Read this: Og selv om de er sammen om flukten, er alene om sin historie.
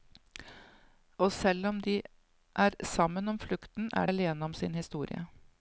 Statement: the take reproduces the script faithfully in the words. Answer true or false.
true